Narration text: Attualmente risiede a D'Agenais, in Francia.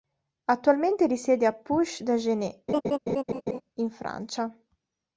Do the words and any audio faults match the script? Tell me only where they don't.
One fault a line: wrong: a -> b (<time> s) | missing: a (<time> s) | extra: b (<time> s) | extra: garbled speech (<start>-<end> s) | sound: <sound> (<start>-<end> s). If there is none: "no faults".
extra: Puch (1.5 s)
sound: laugh (2.7-3.6 s)